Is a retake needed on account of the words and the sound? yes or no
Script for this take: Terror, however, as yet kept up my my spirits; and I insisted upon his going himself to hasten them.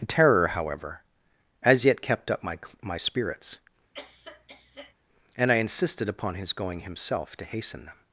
yes